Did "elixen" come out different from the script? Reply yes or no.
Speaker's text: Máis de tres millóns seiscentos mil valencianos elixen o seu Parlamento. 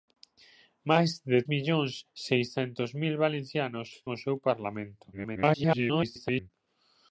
yes